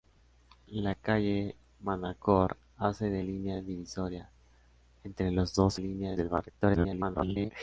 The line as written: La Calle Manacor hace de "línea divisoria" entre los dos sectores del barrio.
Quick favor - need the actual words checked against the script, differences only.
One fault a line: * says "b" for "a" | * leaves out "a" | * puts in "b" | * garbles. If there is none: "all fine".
* says "línea" for "sectores"
* garbles